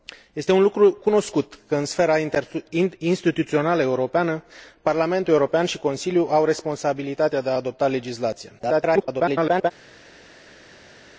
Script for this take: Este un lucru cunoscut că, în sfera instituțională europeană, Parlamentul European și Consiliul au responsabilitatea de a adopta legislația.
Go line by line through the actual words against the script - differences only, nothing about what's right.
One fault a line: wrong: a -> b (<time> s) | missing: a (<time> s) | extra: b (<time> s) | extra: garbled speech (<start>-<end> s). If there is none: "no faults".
extra: garbled speech (8.6-9.7 s)